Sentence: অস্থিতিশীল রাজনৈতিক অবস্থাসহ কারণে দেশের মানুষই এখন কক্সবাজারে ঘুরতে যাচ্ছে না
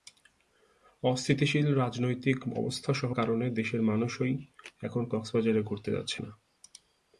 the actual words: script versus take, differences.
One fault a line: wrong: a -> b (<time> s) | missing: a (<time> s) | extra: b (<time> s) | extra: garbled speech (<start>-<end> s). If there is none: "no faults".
no faults